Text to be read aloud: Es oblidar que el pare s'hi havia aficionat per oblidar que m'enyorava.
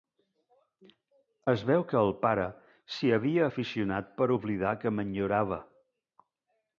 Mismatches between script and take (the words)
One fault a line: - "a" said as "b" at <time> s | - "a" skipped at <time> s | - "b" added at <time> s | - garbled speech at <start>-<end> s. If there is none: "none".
- "oblidar" said as "veu" at 1.7 s